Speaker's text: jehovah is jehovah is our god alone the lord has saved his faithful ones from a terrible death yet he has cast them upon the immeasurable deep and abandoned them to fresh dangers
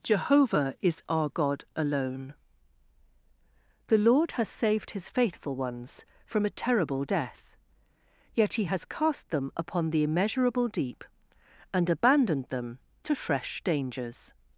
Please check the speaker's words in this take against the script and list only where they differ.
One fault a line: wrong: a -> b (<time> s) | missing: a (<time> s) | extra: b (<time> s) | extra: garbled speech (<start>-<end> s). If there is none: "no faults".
missing: jehovah is (1.0 s)